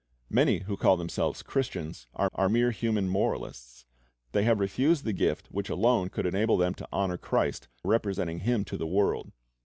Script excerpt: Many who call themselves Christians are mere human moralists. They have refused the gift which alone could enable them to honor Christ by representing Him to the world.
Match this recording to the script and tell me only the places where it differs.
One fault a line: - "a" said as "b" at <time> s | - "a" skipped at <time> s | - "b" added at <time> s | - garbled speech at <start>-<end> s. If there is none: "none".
- "are" added at 2.3 s
- "by" skipped at 7.7 s